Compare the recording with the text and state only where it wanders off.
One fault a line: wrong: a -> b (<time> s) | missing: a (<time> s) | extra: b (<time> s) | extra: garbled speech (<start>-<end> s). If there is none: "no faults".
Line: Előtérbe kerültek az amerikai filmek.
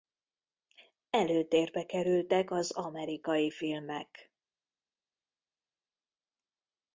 no faults